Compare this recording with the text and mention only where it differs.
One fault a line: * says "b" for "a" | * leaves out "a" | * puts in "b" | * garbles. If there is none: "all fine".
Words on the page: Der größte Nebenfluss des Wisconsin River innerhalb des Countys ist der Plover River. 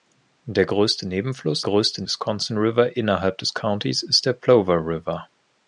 * says "größte" for "des"